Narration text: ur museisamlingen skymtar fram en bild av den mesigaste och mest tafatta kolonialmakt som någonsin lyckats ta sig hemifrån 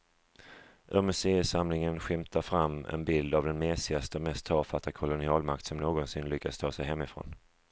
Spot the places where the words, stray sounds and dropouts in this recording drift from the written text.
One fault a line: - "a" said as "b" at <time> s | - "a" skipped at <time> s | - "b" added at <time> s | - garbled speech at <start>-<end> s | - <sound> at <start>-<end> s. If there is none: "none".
none